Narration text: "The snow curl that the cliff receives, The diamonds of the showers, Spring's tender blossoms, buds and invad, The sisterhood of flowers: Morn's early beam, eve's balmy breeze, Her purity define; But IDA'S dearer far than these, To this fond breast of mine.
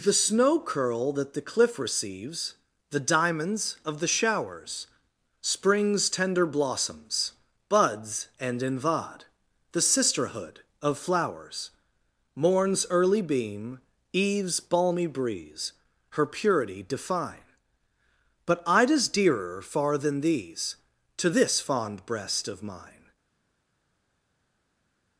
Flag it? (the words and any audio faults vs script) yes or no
no